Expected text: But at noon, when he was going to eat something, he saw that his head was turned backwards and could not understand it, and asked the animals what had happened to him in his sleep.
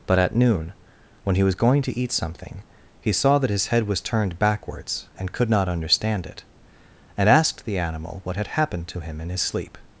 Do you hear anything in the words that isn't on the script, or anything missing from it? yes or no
yes